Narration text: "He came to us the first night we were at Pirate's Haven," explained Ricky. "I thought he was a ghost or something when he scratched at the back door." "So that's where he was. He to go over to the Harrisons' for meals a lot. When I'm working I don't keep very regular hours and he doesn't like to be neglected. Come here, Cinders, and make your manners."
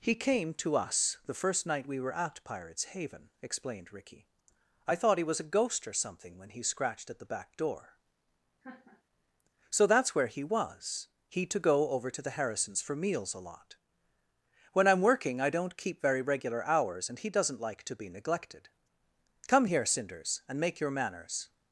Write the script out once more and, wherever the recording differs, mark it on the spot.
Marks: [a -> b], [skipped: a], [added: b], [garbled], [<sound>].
"He came to us the first night we were at Pirate's Haven," explained Ricky. "I thought he was a ghost or something when he scratched at the back door." [laugh] "So that's where he was. He to go over to the Harrisons' for meals a lot. When I'm working I don't keep very regular hours and he doesn't like to be neglected. Come here, Cinders, and make your manners."